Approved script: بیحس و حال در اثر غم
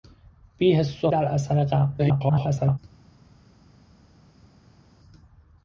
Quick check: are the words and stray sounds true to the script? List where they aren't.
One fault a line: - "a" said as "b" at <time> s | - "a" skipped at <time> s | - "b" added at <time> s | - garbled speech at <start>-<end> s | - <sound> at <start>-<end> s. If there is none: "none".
- "حال" skipped at 1.1 s
- garbled speech at 2.0-2.8 s